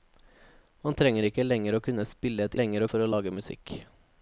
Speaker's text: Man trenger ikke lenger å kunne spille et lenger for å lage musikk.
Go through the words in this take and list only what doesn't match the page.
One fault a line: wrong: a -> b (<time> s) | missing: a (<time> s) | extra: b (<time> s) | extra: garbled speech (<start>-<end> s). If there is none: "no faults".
no faults